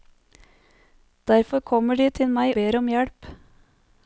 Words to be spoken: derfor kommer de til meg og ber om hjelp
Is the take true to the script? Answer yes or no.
no